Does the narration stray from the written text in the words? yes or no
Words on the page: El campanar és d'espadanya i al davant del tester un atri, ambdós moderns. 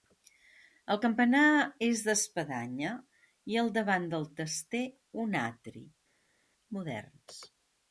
yes